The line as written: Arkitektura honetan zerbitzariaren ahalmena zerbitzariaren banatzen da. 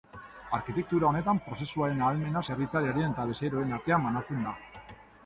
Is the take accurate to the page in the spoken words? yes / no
no